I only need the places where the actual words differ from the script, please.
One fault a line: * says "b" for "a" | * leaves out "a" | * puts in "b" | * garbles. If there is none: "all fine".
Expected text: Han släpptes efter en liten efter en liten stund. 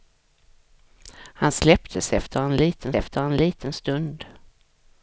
all fine